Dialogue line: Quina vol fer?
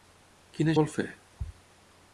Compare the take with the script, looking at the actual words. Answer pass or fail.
pass